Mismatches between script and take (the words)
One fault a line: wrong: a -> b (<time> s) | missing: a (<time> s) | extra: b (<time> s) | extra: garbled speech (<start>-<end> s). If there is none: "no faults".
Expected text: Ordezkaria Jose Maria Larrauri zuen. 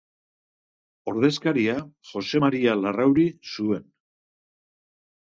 no faults